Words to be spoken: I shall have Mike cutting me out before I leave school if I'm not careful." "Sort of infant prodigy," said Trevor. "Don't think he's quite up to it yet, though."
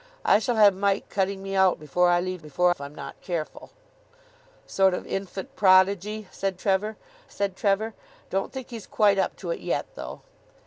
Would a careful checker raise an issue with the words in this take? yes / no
yes